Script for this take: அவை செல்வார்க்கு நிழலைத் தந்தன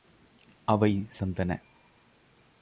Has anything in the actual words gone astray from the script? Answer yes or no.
yes